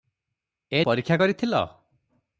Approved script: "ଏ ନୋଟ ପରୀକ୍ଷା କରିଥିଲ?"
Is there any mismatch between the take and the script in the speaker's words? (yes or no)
yes